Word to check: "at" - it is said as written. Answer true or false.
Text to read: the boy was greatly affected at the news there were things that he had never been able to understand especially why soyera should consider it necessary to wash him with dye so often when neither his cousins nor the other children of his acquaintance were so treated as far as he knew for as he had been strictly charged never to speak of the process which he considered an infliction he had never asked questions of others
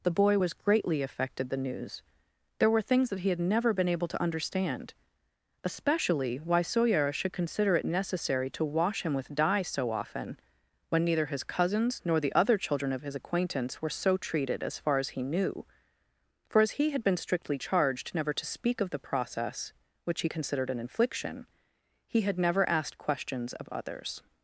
false